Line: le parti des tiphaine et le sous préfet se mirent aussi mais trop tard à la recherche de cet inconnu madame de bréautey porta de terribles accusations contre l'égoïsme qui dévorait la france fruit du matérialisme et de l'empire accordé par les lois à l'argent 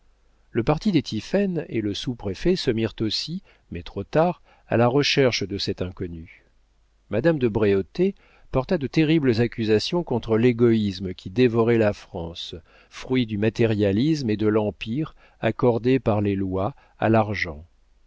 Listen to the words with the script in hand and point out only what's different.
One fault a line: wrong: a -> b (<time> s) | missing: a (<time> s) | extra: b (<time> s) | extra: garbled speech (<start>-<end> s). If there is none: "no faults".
no faults